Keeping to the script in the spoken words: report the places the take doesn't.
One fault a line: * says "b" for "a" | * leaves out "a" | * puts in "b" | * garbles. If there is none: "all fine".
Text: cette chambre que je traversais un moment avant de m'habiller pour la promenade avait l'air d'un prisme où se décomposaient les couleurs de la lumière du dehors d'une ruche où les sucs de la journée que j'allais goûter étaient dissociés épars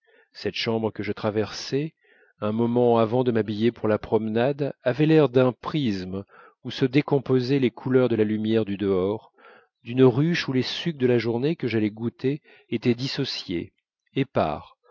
all fine